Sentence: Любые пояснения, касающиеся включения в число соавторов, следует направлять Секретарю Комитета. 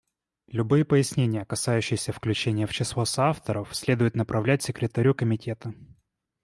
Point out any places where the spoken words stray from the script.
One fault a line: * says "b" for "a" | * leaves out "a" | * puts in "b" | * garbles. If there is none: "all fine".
all fine